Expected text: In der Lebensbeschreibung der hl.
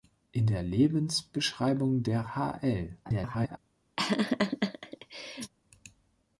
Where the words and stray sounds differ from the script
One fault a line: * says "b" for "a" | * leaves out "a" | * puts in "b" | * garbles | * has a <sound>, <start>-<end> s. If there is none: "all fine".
* garbles
* has a laugh, 4.0-5.5 s